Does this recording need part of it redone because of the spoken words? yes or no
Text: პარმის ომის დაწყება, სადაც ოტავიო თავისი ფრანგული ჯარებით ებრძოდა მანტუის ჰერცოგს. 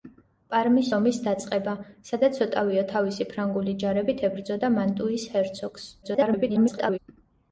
yes